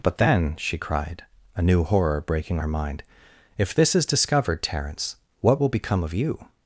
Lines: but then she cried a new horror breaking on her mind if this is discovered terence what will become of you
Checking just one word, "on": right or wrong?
wrong